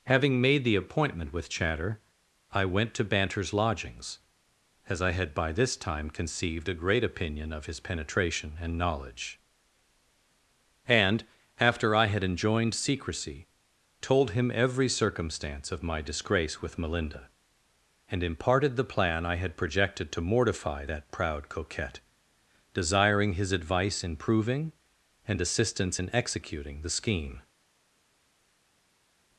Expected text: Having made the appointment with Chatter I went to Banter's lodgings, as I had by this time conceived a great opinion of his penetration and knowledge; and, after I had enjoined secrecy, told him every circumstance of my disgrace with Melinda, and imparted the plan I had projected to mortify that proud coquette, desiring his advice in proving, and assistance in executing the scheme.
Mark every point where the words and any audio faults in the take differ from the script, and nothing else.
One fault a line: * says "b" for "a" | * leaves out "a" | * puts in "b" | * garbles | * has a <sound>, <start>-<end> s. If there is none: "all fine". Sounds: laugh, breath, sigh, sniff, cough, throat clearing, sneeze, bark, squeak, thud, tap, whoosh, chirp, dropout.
all fine